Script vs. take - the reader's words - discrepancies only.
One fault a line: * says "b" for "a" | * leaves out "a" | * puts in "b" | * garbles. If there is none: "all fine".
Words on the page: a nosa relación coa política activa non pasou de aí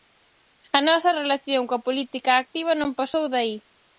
all fine